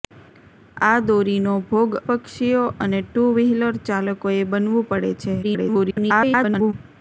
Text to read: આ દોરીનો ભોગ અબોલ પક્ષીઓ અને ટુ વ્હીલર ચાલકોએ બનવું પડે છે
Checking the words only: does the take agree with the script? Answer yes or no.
no